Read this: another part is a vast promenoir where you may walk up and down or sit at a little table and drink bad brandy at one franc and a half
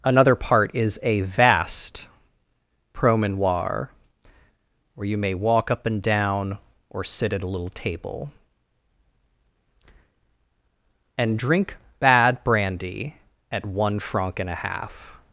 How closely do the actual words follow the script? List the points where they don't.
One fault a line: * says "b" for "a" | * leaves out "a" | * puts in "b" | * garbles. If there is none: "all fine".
all fine